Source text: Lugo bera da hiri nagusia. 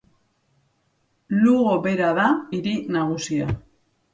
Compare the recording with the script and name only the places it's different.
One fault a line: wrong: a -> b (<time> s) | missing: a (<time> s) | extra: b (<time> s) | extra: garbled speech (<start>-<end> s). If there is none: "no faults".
no faults